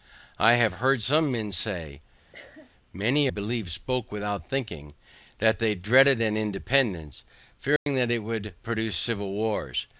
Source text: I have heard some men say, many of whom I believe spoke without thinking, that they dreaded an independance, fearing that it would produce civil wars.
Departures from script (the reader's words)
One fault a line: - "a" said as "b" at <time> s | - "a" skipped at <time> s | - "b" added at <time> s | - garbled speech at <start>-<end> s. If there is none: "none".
- "of whom I" skipped at 3.3 s